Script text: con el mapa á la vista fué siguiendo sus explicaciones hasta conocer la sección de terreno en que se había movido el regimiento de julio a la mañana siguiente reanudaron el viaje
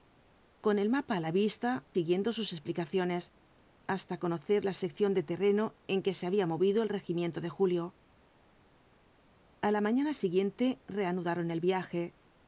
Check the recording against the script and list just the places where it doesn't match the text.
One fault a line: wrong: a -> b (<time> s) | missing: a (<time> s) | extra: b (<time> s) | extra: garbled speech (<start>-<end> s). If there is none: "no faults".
missing: fué (1.7 s)